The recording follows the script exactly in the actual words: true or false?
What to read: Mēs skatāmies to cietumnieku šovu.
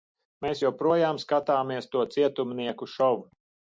false